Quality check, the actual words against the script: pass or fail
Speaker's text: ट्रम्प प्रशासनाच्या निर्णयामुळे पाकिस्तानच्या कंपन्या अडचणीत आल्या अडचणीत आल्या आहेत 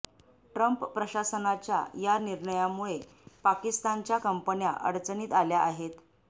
fail